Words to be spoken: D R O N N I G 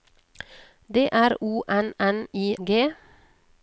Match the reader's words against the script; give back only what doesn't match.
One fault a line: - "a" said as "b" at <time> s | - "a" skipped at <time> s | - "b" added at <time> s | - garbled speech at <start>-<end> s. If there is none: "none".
none